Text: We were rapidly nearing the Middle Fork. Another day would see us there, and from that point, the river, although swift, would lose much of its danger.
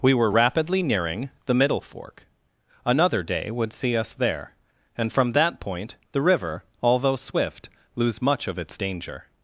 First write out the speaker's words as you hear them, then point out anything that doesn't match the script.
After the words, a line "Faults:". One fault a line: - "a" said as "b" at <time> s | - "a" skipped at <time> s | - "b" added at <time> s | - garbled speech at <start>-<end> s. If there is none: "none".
We were rapidly nearing the Middle Fork. Another day would see us there, and from that point, the river, although swift, lose much of its danger.
Faults:
- "would" skipped at 7.7 s